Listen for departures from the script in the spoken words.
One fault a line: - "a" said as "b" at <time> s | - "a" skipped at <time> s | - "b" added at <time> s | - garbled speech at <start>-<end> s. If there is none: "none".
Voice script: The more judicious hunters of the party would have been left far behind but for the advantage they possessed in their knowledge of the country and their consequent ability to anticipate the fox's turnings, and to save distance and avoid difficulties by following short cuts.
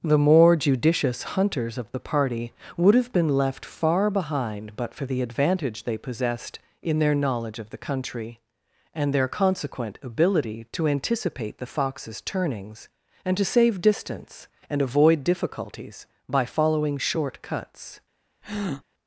none